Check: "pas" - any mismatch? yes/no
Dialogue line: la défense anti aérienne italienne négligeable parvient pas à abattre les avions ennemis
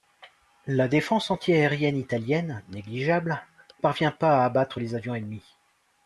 no